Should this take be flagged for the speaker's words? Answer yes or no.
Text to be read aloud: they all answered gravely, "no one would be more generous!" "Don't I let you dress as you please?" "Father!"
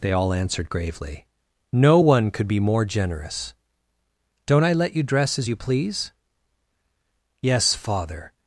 yes